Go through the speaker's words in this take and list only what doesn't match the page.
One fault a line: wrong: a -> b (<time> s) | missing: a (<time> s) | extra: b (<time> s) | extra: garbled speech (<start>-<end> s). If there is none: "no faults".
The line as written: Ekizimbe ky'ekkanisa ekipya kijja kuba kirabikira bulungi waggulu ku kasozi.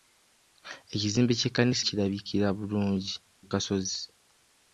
missing: ekipya kijja kuba (1.8 s)
missing: waggulu (3.1 s)